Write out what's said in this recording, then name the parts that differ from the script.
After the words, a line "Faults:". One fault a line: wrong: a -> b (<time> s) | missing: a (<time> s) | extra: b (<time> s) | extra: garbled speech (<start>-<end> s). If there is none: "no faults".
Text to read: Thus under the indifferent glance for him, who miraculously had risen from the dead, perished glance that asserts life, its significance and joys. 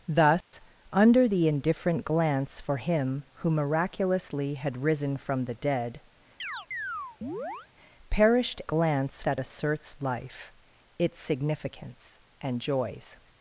Thus under the indifferent glance for him, who miraculously had risen from the dead, perished glance that asserts life, its significance and joys.
Faults:
no faults